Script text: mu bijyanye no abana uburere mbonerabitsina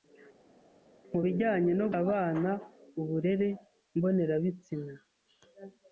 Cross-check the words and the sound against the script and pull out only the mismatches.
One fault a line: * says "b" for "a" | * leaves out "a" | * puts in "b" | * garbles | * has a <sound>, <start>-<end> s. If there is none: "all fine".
all fine